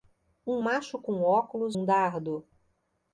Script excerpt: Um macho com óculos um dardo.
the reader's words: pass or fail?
pass